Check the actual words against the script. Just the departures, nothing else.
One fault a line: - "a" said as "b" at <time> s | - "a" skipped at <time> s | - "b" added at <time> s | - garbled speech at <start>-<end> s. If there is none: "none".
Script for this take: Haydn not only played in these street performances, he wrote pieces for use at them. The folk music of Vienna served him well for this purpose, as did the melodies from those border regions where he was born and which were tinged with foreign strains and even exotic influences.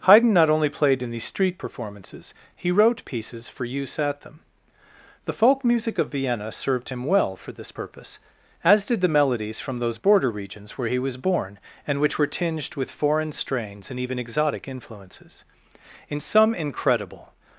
- "In some incredible" added at 16.1 s